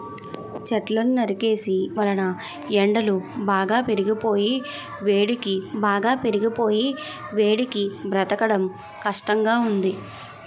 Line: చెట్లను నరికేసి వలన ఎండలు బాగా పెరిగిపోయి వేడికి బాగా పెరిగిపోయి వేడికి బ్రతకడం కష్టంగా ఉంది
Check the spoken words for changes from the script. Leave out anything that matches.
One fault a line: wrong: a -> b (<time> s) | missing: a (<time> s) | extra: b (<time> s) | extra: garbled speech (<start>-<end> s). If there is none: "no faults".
no faults